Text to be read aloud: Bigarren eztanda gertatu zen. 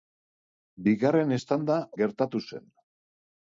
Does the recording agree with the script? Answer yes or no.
yes